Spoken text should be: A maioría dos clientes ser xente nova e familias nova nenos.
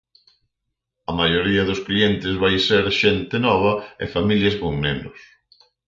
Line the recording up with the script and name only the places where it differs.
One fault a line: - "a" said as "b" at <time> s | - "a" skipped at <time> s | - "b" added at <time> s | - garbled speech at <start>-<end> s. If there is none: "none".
- "vai" added at 2.4 s
- "nova" said as "con" at 4.6 s